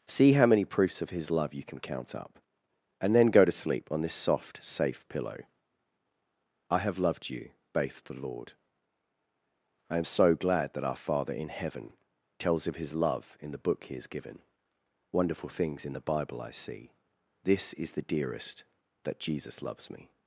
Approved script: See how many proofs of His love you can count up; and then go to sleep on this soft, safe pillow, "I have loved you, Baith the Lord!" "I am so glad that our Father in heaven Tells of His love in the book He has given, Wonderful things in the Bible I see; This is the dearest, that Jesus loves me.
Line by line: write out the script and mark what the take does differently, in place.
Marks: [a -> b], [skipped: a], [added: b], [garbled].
See how many proofs of His love you can count up; and then go to sleep on this soft, safe pillow, "I have loved you, Baith the Lord!" "I am so glad that our Father in heaven Tells of His love in the book He has given, Wonderful things in the Bible I see; This is the dearest, that Jesus loves me.